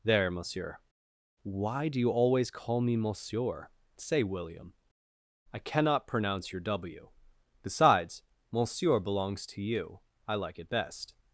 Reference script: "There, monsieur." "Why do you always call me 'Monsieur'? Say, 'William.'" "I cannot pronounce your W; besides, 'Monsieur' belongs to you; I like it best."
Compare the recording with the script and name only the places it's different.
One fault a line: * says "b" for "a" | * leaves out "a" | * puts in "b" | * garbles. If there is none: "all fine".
all fine